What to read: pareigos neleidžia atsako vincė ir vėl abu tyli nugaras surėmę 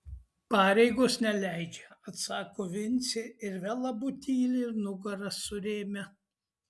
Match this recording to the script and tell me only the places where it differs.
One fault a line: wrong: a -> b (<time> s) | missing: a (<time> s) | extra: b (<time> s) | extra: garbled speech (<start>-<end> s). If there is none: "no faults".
no faults